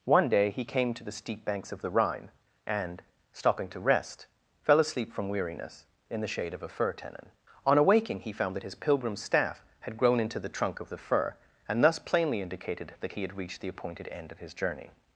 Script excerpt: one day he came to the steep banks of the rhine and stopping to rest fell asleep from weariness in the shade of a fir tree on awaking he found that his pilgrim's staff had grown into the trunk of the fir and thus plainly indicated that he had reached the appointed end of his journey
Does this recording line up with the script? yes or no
no